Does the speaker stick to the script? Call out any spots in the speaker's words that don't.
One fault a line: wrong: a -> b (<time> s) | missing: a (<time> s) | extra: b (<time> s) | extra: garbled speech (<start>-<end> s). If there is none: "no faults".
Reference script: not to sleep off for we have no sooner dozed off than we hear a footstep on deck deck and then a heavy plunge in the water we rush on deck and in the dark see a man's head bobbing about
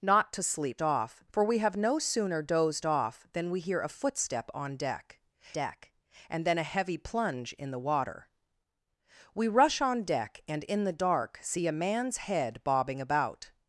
no faults